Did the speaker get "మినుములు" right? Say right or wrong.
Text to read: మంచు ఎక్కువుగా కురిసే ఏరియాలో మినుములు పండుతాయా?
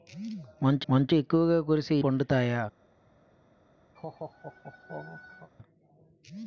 wrong